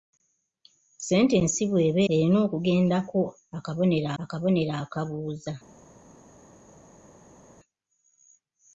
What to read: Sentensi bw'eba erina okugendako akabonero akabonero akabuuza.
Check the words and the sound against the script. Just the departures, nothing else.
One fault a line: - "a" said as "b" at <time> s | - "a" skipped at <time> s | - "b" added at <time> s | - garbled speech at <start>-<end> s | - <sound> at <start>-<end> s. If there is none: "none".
none